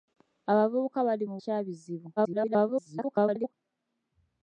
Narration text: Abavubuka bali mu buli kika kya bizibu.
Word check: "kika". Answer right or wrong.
wrong